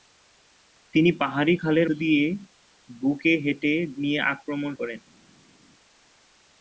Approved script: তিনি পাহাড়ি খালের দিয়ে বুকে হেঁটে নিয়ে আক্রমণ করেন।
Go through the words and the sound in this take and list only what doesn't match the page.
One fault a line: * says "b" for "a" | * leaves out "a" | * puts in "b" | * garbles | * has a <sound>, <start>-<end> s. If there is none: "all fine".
all fine